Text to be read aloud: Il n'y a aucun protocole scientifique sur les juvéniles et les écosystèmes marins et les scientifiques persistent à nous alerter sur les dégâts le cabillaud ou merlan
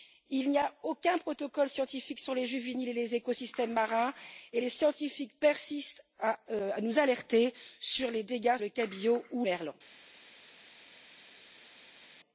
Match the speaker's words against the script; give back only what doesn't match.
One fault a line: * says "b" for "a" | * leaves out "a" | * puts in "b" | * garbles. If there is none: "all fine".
all fine